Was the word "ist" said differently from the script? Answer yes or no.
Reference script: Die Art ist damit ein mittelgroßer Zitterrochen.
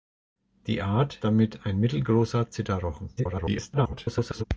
yes